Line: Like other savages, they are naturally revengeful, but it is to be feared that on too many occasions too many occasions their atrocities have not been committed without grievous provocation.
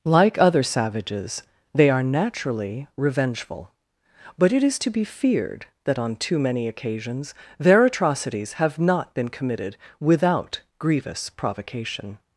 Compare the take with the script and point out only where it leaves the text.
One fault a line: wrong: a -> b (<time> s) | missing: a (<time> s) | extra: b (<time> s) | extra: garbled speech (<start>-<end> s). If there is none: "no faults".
missing: too many occasions (7.3 s)